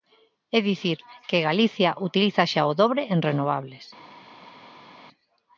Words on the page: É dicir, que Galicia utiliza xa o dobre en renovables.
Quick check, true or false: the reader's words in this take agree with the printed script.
true